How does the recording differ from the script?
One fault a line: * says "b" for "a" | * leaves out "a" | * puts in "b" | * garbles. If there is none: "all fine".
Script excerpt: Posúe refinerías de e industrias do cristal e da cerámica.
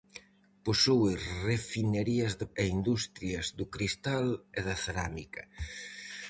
all fine